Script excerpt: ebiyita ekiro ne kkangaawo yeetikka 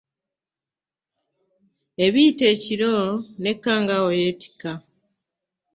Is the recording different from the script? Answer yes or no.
no